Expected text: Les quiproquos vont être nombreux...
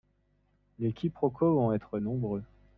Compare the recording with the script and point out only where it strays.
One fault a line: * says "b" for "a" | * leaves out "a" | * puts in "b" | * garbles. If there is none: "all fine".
all fine